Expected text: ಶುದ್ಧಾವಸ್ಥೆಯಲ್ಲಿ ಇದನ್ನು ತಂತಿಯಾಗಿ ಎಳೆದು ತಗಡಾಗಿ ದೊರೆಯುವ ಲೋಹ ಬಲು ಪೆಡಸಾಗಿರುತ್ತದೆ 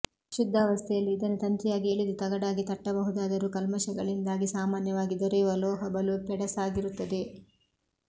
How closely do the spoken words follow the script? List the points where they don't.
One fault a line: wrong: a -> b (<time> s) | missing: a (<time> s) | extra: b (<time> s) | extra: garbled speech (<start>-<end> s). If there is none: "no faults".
extra: ತಟ್ಟಬಹುದಾದರೂ ಕಲ್ಮಷಗಳಿಂದಾಗಿ ಸಾಮಾನ್ಯವಾಗಿ (2.6 s)